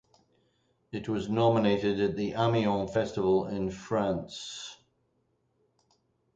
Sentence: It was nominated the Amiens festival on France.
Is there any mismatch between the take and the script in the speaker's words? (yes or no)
yes